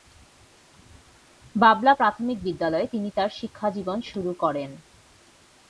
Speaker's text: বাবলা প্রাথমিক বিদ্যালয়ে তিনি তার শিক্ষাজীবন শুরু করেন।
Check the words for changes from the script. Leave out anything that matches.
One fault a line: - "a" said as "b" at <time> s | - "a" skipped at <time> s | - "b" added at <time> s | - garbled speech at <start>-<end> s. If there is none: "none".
none